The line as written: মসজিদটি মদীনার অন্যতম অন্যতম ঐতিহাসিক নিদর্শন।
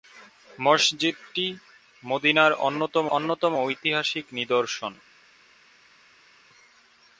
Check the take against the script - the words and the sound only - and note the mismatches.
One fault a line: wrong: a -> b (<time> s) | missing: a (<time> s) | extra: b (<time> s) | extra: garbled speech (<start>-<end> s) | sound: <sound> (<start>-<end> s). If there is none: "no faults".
no faults